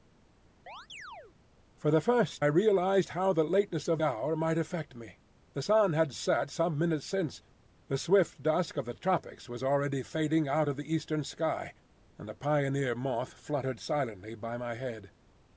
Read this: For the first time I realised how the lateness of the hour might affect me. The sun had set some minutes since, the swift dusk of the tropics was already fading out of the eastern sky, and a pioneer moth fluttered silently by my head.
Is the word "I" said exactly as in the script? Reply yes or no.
no